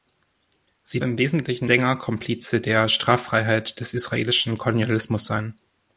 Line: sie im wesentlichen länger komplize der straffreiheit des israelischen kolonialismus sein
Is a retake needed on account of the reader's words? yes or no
no